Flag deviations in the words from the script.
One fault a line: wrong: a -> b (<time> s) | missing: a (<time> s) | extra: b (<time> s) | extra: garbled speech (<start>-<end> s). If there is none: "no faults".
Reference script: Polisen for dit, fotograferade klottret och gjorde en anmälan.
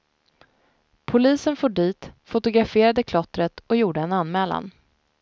no faults